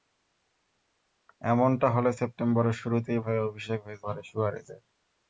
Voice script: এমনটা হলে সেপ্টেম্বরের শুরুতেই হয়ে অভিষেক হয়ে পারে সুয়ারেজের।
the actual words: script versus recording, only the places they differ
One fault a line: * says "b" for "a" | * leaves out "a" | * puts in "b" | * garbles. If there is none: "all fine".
all fine